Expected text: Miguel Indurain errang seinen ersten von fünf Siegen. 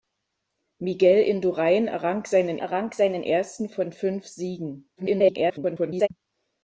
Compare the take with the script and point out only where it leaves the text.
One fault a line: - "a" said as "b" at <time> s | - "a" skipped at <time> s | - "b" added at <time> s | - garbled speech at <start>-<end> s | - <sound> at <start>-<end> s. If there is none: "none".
- "errang seinen" added at 2.6 s
- garbled speech at 5.0-6.1 s